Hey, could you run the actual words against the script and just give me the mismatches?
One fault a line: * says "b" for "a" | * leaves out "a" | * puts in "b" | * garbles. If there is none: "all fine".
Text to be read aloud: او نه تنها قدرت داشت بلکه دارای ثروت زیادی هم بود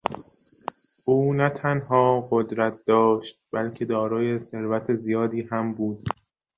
all fine